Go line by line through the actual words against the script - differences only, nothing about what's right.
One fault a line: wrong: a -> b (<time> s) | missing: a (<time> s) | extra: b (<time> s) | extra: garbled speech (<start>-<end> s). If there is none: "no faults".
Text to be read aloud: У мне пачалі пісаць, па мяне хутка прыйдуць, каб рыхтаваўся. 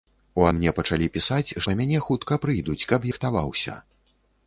no faults